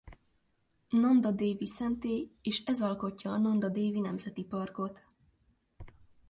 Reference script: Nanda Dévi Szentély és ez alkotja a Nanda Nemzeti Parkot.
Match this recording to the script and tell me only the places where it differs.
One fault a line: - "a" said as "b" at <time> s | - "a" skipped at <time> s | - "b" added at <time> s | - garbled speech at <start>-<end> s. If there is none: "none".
- "Dévi" added at 3.7 s